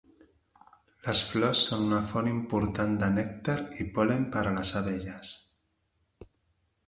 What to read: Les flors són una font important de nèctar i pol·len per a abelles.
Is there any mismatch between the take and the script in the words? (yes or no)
yes